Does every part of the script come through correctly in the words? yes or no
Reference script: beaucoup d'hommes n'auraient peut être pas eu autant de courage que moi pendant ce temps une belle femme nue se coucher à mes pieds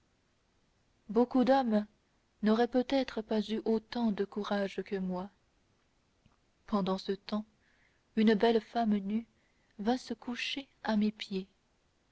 no